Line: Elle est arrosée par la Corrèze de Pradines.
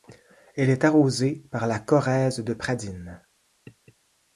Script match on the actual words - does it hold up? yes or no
yes